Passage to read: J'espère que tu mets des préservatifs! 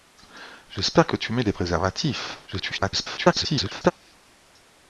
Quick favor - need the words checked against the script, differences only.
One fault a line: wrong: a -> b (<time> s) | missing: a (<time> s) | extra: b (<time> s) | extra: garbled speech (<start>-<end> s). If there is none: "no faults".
extra: garbled speech (2.5-3.9 s)